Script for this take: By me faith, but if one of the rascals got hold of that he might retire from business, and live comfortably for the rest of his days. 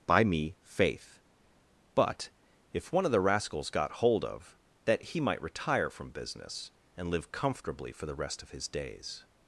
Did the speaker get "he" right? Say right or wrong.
right